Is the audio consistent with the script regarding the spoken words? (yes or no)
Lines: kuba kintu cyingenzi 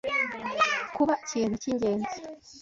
yes